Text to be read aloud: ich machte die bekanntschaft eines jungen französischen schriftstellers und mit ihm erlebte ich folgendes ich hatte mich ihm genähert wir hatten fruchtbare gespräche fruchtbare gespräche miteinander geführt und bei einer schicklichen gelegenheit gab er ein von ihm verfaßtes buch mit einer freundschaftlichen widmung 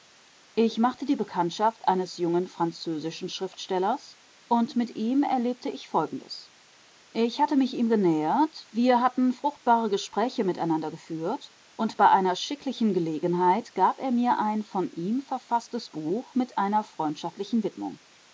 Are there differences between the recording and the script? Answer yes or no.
yes